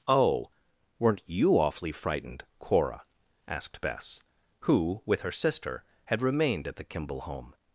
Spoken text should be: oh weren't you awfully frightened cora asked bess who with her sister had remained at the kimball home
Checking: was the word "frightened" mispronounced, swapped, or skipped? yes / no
no